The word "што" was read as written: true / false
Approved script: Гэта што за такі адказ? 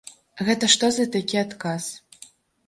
true